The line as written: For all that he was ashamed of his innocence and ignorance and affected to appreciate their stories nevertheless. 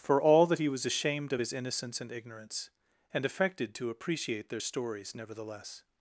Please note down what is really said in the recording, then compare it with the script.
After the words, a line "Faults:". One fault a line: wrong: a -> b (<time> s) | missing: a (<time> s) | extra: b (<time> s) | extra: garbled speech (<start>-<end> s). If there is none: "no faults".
For all that he was ashamed of his innocence and ignorance and affected to appreciate their stories nevertheless.
Faults:
no faults